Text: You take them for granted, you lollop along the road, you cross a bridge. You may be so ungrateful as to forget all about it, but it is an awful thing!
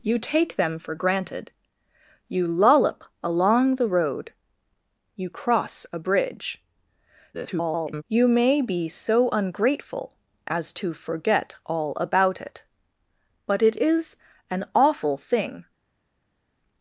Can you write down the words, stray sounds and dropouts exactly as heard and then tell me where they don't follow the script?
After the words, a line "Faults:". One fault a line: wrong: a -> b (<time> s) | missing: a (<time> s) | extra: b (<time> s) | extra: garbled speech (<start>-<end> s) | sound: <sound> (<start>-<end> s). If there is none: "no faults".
You take them for granted, you lollop along the road, you cross a bridge. [garbled] You may be so ungrateful as to forget all about it, but it is an awful thing!
Faults:
extra: garbled speech (7.3-8.0 s)